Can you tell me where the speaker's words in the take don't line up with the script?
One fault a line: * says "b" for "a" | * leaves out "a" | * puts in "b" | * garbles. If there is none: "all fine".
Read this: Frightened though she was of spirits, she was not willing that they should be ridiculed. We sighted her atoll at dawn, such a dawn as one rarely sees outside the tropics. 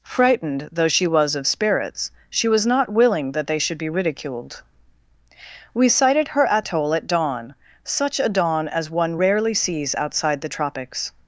all fine